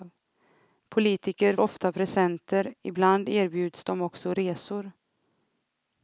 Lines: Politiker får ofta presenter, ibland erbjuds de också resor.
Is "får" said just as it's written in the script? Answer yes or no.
no